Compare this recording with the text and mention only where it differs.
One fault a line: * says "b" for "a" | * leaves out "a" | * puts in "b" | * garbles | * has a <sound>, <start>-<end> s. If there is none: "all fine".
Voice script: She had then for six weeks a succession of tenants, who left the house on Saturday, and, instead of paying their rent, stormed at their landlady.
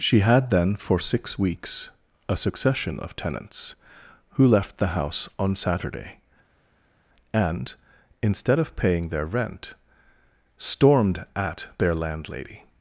all fine